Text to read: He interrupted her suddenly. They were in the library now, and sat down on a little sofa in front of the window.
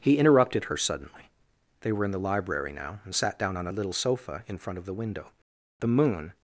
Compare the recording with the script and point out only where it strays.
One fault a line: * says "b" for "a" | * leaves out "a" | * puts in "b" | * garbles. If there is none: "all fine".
* puts in "The moon"